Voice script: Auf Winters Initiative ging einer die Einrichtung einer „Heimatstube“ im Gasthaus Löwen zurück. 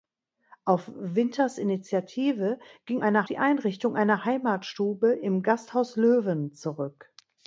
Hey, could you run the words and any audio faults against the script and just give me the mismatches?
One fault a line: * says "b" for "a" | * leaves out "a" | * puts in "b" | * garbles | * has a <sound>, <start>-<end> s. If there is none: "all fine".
all fine